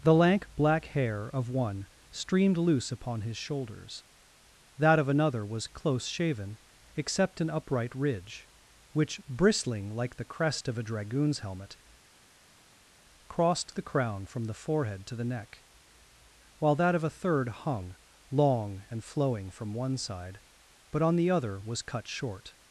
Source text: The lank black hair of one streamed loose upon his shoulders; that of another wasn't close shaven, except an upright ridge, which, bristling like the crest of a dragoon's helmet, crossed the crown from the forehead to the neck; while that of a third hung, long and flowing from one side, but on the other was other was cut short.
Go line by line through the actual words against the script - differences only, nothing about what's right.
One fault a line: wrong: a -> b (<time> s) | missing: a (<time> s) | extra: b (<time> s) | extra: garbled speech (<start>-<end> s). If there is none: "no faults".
wrong: wasn't -> was (5.5 s)
missing: other was (21.8 s)